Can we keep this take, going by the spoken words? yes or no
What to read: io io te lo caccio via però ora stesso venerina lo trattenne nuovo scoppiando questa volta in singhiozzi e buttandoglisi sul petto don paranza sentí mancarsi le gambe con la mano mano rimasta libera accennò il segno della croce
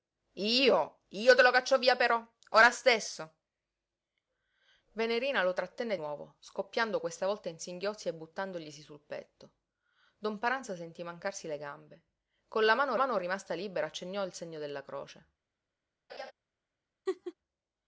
yes